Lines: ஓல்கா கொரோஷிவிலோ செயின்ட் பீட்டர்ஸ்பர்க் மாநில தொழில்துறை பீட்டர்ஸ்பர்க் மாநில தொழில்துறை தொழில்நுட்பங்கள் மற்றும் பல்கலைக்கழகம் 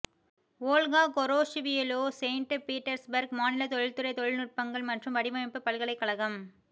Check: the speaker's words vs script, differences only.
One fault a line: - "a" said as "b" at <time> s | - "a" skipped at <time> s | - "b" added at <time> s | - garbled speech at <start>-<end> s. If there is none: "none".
- "பீட்டர்ஸ்பர்க் மாநில தொழில்துறை" skipped at 4.1 s
- "வடிவமைப்பு" added at 5.2 s